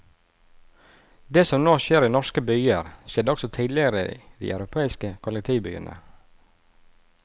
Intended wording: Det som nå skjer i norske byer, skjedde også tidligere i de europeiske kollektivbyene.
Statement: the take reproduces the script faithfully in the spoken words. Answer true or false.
true